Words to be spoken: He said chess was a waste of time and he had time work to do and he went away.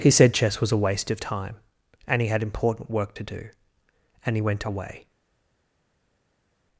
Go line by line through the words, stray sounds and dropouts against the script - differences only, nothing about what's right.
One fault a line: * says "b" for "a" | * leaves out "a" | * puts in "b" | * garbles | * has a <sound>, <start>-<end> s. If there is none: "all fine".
* says "important" for "time"